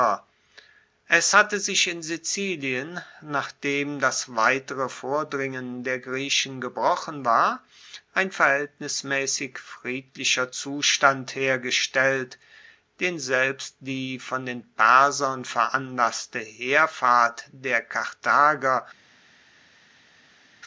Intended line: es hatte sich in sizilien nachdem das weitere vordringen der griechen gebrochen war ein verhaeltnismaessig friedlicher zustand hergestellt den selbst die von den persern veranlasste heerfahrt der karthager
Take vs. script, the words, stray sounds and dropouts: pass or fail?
pass